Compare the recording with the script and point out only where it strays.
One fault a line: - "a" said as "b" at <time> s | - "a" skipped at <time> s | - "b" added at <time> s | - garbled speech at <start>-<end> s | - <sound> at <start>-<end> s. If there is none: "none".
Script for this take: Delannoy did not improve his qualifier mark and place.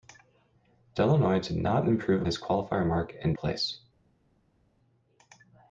none